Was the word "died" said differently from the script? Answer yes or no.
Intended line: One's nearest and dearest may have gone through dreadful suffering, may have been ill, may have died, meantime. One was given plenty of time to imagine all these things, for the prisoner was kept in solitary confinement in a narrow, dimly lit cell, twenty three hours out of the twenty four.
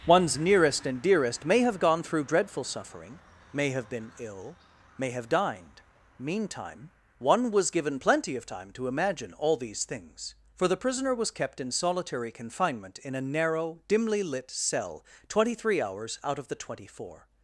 yes